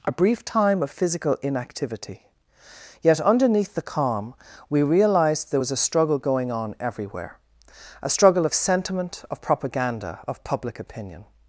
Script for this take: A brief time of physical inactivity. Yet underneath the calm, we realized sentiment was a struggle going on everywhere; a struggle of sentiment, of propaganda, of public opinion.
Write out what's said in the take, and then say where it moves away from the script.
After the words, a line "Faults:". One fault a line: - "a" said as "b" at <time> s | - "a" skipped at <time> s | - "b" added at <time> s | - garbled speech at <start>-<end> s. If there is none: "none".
A brief time of physical inactivity. Yet underneath the calm, we realized there was a struggle going on everywhere; a struggle of sentiment, of propaganda, of public opinion.
Faults:
- "sentiment" said as "there" at 5.5 s